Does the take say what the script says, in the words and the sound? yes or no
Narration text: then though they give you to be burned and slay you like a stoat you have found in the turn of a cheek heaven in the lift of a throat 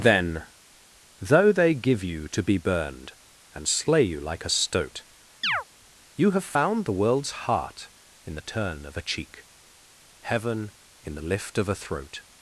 no